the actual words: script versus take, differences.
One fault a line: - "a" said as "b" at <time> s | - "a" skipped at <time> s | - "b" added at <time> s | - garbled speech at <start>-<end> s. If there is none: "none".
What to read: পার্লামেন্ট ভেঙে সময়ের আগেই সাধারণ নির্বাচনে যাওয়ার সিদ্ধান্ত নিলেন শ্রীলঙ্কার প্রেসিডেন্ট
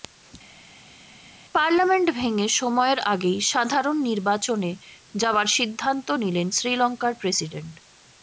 none